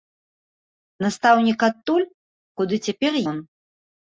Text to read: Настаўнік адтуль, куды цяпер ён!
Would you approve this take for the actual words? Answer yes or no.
yes